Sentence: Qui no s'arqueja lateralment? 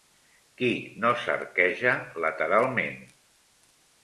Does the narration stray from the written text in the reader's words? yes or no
no